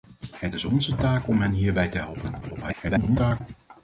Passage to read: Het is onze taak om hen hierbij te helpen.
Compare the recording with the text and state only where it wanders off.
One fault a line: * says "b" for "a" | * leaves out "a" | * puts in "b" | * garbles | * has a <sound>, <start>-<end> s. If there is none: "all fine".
* garbles